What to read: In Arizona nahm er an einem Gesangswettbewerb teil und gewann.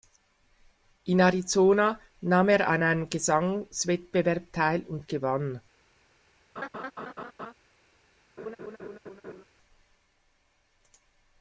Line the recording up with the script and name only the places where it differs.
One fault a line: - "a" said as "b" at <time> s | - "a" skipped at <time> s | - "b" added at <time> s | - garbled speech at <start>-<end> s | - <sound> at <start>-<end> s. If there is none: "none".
- laugh at 6.6-7.5 s
- laugh at 8.4-9.4 s